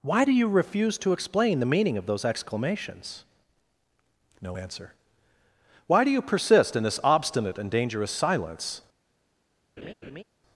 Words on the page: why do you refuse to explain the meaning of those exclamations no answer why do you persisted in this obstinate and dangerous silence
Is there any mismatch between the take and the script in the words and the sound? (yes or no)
yes